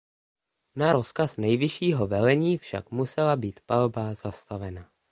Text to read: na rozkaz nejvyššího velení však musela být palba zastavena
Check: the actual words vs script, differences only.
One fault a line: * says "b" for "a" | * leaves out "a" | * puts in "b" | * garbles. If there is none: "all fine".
all fine